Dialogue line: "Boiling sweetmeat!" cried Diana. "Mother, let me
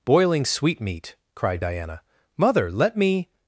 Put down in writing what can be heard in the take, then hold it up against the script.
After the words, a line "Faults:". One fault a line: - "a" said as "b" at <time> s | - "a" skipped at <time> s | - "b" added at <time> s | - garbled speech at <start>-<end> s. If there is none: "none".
"Boiling sweetmeat!" cried Diana. "Mother, let me
Faults:
none